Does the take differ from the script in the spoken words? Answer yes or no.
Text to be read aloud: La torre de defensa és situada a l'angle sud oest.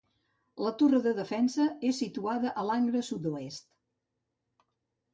no